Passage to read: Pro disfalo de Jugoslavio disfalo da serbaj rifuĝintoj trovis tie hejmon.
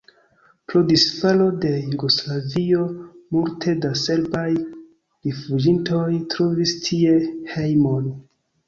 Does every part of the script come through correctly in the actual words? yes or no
no